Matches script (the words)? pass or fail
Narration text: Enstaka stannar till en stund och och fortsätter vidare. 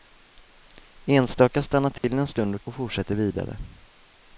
pass